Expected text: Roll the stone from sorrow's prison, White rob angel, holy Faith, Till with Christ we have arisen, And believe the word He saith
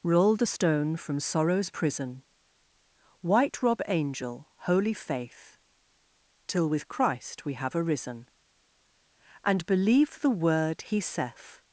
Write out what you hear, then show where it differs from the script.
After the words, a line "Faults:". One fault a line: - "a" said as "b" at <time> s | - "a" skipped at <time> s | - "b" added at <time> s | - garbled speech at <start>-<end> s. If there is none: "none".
Roll the stone from sorrow's prison, White rob angel, holy Faith, Till with Christ we have arisen, And believe the word He saith
Faults:
none